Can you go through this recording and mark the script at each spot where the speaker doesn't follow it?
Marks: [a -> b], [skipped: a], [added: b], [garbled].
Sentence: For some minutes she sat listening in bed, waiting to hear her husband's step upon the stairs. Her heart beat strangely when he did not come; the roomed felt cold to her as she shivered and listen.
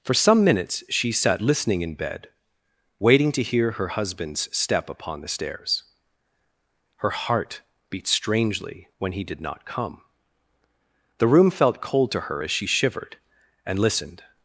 For some minutes she sat listening in bed, waiting to hear her husband's step upon the stairs. Her heart beat strangely when he did not come; the [roomed -> room] felt cold to her as she shivered and [listen. -> listened]